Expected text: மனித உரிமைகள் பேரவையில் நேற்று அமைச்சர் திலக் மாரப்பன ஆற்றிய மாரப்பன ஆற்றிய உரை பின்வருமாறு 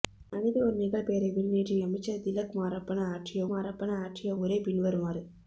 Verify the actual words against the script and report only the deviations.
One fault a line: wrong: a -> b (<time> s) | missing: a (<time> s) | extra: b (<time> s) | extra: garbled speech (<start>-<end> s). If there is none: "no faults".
no faults